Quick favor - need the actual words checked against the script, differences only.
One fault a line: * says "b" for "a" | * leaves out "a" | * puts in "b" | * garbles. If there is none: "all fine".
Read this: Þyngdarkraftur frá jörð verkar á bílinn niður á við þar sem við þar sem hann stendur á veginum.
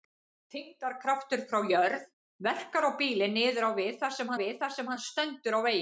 all fine